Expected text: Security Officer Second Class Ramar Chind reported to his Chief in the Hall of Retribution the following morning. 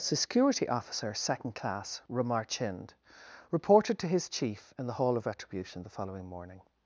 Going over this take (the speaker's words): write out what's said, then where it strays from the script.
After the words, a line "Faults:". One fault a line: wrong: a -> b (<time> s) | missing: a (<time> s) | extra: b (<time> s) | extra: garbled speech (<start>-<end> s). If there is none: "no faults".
Security Officer Second Class Ramar Chind reported to his Chief in the Hall of Retribution the following morning.
Faults:
no faults